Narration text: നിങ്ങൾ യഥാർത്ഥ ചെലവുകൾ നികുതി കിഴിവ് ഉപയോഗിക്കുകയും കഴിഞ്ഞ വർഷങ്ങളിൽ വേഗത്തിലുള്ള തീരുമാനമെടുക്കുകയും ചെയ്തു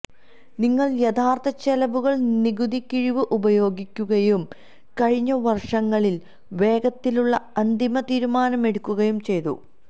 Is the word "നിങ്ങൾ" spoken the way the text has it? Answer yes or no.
yes